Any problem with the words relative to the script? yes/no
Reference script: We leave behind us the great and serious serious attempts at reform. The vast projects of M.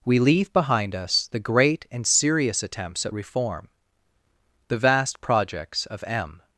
yes